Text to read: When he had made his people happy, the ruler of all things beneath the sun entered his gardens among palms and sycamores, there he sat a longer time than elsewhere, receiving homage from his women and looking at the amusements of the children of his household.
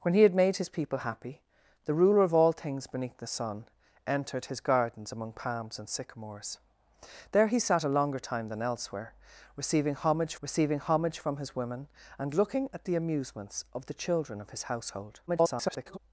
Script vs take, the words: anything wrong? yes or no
yes